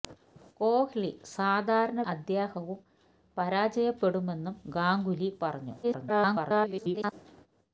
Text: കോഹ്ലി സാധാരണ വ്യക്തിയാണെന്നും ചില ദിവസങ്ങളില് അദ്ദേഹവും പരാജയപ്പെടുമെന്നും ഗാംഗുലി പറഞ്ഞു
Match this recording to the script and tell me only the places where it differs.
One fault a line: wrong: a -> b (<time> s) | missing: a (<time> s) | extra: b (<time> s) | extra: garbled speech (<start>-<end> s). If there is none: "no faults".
missing: വ്യക്തിയാണെന്നും ചില ദിവസങ്ങളില് (2.0 s)
extra: garbled speech (5.8-7.1 s)